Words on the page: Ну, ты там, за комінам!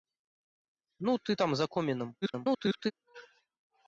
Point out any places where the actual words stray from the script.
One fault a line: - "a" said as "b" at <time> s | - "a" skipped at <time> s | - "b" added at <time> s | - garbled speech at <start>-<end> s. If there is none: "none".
- garbled speech at 2.2-2.9 s